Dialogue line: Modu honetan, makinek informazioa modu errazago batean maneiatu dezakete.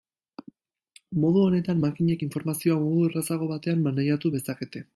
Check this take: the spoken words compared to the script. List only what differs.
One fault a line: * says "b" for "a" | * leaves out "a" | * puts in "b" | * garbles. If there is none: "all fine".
all fine